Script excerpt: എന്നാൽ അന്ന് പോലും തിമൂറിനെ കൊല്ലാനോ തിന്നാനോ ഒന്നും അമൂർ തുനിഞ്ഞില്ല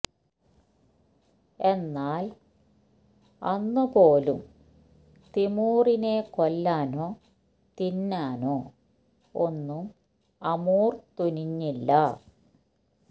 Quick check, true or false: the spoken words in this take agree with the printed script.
true